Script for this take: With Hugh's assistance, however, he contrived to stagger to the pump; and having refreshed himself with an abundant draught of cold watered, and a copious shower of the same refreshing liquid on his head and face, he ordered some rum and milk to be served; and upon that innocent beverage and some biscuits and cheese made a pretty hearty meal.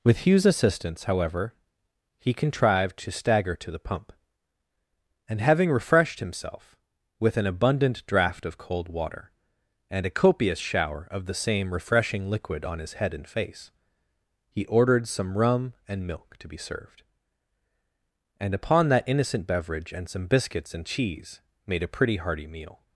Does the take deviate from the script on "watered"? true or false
true